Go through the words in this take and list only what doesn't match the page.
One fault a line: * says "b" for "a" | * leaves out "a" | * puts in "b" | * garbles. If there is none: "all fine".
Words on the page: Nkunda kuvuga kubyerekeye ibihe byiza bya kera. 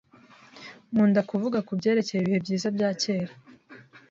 all fine